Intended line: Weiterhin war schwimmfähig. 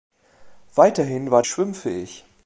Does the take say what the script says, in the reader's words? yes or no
yes